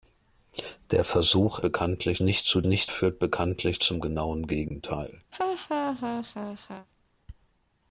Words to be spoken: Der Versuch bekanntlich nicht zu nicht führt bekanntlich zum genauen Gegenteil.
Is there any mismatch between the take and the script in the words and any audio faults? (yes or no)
yes